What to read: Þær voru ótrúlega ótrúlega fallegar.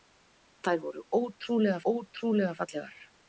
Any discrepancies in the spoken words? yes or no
no